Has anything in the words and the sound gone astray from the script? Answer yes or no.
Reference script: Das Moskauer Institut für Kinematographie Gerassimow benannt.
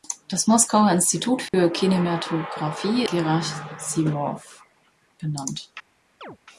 yes